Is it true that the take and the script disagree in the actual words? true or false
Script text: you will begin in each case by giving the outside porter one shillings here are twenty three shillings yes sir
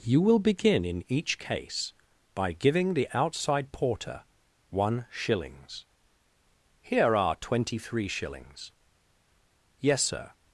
false